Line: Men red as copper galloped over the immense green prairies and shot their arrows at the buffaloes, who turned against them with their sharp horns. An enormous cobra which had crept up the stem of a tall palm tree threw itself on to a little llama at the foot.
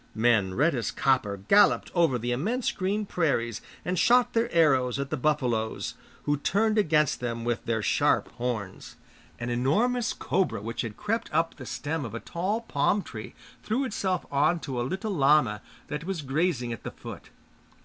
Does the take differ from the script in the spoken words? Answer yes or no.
yes